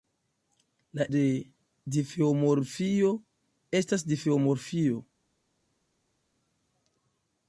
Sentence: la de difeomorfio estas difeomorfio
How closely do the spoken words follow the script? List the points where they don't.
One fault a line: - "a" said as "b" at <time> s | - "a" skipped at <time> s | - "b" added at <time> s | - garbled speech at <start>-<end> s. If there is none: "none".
none